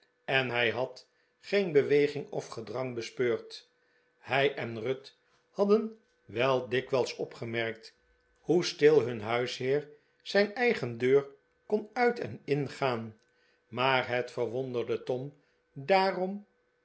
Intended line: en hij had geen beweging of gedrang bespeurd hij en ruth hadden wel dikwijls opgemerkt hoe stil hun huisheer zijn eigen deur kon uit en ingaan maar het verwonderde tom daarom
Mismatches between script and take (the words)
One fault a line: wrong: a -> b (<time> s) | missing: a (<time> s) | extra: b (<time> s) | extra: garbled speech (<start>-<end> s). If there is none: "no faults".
no faults